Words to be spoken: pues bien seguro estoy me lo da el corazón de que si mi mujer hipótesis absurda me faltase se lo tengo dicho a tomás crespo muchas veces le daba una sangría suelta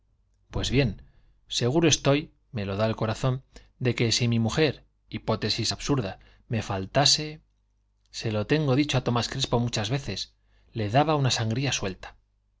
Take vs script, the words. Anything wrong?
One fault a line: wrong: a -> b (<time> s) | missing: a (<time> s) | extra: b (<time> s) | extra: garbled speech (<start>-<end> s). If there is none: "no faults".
no faults